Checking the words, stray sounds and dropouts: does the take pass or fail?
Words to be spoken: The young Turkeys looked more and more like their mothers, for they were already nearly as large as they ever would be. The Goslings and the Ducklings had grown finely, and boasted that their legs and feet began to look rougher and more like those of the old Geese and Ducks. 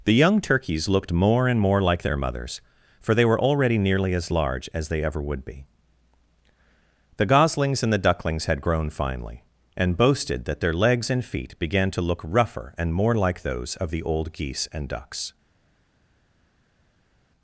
pass